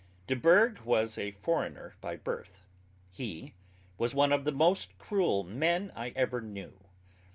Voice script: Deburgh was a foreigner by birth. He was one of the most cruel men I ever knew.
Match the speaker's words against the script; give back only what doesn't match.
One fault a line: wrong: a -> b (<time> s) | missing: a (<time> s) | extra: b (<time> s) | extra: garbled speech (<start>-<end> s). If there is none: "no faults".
no faults